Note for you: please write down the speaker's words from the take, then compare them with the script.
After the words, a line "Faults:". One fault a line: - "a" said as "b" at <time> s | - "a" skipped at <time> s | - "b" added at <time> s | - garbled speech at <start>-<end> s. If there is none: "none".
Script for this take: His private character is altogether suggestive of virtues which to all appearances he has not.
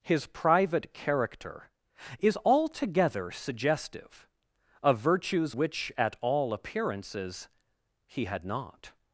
His private character is altogether suggestive of virtues which at all appearances he had not.
Faults:
- "to" said as "at" at 6.0 s
- "has" said as "had" at 8.2 s